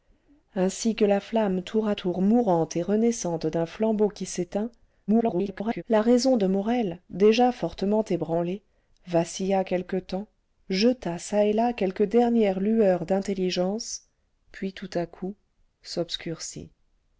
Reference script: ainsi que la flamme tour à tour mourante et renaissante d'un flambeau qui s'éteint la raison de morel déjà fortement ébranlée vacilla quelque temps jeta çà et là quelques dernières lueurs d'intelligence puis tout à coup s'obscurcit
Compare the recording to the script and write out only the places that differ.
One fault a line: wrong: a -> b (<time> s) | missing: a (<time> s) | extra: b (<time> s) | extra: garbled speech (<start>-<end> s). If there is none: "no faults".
extra: garbled speech (5.1-5.8 s)